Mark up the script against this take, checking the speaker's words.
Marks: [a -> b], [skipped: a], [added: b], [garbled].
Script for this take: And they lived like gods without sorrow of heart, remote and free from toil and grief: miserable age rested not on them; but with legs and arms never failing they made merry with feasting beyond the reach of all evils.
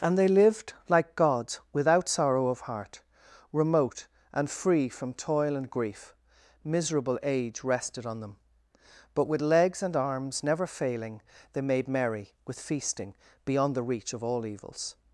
And they lived like gods without sorrow of heart, remote and free from toil and grief: miserable age rested [skipped: not] on them; but with legs and arms never failing they made merry with feasting beyond the reach of all evils.